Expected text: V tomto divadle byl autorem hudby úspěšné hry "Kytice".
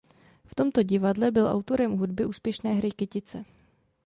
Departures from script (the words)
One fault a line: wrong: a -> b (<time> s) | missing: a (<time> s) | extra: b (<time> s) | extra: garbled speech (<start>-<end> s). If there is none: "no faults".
no faults